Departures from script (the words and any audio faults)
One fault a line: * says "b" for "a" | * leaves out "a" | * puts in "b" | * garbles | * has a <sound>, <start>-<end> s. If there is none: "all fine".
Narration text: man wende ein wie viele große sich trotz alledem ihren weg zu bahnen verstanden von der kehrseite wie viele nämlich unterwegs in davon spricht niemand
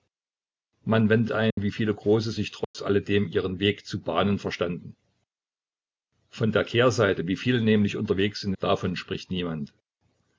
* has a dropout, 1.5-1.6 s
* has a dropout, 2.6-2.7 s